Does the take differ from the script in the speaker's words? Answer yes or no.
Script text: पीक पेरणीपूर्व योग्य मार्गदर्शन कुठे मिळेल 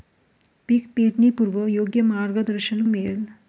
yes